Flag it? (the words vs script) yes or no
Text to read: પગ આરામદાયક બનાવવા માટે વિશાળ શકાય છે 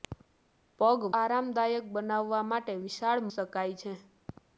no